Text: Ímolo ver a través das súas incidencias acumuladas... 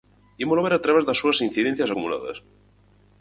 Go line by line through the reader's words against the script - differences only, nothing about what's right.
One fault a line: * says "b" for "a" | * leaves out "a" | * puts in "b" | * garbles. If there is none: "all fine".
all fine